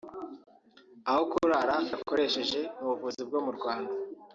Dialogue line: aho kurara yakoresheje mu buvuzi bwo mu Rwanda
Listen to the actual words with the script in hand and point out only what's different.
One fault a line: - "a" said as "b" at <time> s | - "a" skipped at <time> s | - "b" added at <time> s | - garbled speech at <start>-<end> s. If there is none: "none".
none